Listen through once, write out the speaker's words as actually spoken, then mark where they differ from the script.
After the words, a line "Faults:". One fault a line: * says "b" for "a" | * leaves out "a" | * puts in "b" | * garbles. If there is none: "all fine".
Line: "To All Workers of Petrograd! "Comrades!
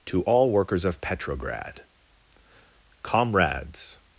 "To All Workers of Petrograd! "Comrades!
Faults:
all fine